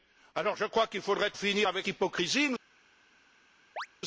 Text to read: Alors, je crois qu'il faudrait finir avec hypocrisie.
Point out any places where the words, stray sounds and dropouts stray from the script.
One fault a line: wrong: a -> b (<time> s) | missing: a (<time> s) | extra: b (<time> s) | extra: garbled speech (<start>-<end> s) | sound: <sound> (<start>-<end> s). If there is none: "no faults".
sound: chirp (3.8-3.9 s)